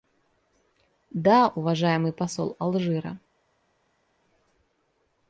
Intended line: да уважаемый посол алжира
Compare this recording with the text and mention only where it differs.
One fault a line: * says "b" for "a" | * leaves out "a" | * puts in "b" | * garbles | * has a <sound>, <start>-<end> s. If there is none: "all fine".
all fine